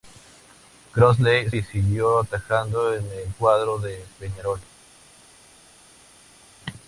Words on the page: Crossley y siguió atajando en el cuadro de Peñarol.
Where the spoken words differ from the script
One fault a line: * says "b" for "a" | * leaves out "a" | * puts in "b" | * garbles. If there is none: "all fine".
all fine